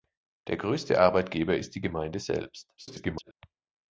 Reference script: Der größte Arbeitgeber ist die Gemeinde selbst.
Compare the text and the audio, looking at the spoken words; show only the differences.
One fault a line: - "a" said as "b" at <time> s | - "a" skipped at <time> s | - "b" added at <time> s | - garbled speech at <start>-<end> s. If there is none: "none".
- garbled speech at 2.8-3.3 s